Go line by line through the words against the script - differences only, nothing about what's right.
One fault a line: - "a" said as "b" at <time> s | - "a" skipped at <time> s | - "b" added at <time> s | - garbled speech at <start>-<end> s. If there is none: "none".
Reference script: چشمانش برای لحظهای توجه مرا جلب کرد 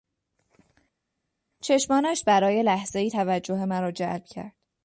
none